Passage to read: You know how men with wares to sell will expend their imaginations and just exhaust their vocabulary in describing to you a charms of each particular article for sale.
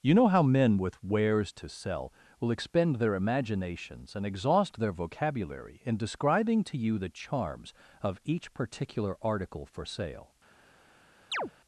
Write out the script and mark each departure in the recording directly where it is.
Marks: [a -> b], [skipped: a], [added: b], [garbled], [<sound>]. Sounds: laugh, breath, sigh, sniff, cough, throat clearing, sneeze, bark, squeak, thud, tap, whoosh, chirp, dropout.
You know how men with wares to sell will expend their imaginations and [skipped: just] exhaust their vocabulary in describing to you [a -> the] charms of each particular article for sale. [chirp]